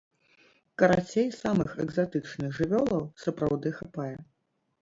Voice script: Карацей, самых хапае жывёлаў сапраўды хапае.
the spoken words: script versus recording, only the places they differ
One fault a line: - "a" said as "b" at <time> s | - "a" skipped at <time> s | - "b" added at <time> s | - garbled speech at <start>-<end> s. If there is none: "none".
- "хапае" said as "экзатычных" at 1.9 s